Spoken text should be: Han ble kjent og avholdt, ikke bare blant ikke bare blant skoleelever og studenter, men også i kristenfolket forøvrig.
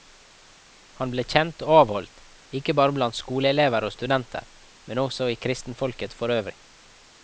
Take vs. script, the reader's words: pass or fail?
fail